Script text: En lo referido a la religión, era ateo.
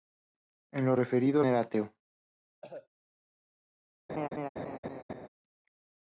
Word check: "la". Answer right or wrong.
wrong